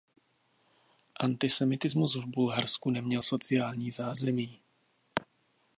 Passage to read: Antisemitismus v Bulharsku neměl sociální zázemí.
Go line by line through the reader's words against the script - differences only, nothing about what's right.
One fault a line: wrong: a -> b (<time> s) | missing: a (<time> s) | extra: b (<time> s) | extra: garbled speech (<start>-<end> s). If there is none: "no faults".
no faults